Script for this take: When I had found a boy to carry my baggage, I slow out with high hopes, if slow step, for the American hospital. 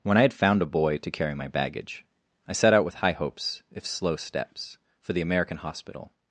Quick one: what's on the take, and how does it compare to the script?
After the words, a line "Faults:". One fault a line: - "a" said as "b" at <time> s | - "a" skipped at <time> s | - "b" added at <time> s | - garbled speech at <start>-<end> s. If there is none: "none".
When I had found a boy to carry my baggage, I set out with high hopes, if slow steps, for the American hospital.
Faults:
- "slow" said as "set" at 2.5 s
- "step" said as "steps" at 4.2 s